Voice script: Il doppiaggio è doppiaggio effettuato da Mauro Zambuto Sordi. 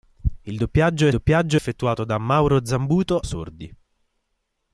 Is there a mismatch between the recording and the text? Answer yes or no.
no